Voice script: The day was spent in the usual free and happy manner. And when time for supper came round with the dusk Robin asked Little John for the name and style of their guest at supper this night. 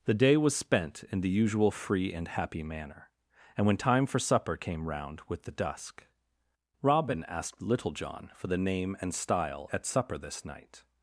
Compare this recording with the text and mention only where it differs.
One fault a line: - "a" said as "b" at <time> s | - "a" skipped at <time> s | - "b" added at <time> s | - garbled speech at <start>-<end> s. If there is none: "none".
- "of their guest" skipped at 9.7 s